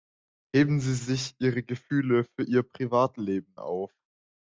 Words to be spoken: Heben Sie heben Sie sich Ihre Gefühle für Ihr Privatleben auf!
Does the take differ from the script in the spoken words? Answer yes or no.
yes